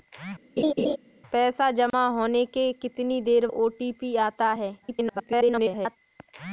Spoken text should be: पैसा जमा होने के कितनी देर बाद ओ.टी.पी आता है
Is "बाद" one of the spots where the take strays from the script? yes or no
yes